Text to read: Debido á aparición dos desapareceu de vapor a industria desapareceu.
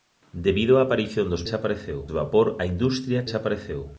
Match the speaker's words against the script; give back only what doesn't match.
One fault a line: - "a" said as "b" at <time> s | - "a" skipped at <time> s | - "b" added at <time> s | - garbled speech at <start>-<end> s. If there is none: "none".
none